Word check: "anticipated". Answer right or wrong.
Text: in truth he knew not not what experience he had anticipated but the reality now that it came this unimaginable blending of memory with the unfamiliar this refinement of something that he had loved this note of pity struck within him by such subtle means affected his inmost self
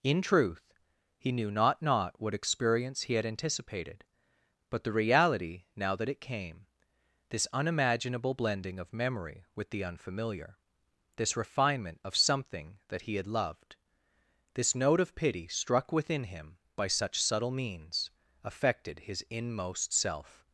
right